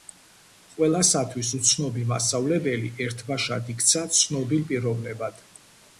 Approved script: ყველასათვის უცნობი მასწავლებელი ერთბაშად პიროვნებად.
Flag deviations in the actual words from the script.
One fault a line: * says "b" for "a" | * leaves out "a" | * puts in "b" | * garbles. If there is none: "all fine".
* puts in "იქცა ცნობილ"